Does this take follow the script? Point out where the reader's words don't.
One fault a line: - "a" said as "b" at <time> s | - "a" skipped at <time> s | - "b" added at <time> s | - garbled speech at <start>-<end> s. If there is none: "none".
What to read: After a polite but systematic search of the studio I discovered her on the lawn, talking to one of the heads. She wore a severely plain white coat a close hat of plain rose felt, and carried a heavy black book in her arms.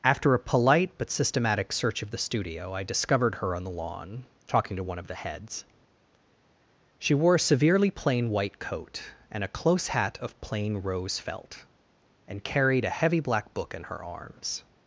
- "and" added at 9.3 s